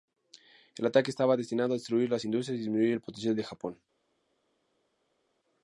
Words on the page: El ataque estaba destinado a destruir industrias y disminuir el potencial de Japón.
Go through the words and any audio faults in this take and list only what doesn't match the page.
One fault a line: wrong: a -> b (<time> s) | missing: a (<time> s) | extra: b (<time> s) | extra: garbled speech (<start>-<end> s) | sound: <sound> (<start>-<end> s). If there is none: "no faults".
extra: las (2.1 s)